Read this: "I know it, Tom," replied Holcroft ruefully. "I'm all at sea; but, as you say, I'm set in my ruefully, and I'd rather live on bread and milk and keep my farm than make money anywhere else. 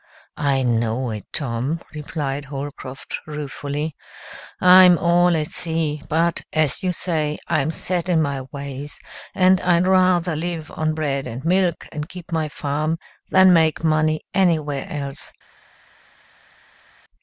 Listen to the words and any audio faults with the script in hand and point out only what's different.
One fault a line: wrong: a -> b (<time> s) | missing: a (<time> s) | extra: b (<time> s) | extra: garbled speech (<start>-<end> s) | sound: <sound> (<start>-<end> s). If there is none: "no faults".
wrong: ruefully -> ways (8.5 s)